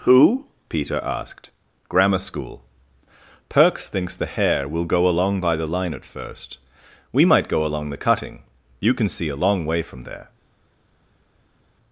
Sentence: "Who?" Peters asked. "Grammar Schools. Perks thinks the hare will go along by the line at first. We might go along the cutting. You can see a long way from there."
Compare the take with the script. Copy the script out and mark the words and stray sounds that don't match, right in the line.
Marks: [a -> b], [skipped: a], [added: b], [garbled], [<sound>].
"Who?" [Peters -> Peter] asked. "Grammar [Schools. -> School] Perks thinks the hare will go along by the line at first. We might go along the cutting. You can see a long way from there."